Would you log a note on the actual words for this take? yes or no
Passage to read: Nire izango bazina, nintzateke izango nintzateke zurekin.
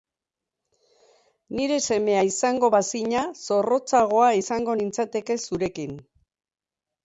yes